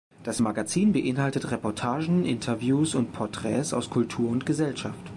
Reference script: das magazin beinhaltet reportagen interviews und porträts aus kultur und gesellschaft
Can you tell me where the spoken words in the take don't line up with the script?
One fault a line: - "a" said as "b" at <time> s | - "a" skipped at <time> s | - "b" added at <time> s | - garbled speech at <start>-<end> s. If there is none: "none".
none